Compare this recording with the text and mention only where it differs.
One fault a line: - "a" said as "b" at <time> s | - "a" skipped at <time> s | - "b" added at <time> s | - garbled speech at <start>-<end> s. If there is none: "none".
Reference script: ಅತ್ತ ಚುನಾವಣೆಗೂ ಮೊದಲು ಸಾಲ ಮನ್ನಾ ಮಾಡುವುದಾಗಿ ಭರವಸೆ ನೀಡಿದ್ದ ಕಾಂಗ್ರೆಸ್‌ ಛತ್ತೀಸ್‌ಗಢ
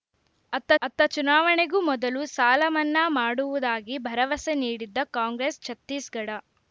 - "ಅತ್ತ" added at 0.8 s